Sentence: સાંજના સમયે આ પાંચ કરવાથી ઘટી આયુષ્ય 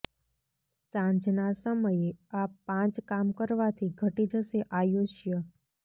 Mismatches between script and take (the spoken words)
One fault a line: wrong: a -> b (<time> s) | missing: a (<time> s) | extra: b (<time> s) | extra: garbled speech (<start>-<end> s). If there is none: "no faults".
extra: કામ (3.1 s)
extra: જશે (4.3 s)